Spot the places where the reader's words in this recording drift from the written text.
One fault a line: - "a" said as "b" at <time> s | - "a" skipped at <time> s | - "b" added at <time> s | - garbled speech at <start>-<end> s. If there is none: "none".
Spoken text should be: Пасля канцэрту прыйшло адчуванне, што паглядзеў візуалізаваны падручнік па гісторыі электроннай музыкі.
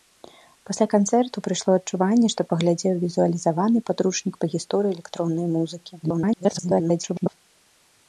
- garbled speech at 6.0-7.3 s